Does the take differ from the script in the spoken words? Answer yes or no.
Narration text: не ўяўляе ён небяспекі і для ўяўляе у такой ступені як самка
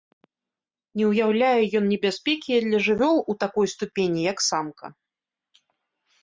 yes